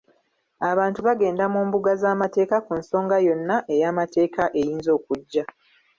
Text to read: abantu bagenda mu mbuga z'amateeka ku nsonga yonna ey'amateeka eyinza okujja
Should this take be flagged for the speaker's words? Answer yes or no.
no